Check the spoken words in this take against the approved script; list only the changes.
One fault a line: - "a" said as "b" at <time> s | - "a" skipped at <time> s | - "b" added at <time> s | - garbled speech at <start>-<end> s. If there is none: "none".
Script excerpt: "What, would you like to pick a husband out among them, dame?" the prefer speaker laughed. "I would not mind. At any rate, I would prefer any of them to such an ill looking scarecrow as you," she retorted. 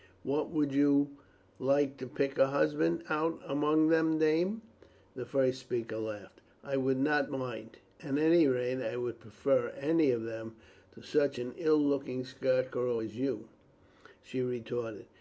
- "prefer" said as "first" at 5.3 s